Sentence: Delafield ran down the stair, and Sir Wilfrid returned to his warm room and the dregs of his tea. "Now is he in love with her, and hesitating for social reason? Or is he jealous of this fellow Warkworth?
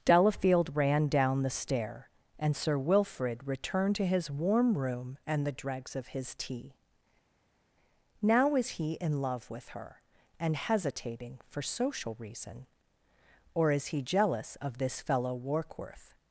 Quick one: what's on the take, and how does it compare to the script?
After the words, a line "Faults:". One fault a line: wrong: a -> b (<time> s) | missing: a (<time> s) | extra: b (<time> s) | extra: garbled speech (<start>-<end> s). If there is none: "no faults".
Delafield ran down the stair, and Sir Wilfrid returned to his warm room and the dregs of his tea. "Now is he in love with her, and hesitating for social reason? Or is he jealous of this fellow Warkworth?
Faults:
no faults